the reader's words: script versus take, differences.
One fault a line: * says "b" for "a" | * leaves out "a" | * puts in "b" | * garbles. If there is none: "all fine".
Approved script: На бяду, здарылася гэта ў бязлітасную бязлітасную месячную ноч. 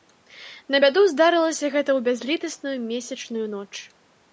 * leaves out "бязлітасную"